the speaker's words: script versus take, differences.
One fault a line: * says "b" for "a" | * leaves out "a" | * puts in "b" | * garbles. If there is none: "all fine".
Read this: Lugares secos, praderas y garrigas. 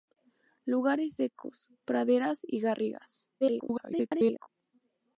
* garbles